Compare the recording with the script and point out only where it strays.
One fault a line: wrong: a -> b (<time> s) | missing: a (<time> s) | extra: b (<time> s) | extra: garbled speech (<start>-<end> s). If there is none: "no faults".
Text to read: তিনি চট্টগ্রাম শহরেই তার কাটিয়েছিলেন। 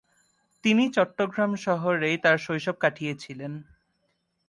extra: শৈশব (2.4 s)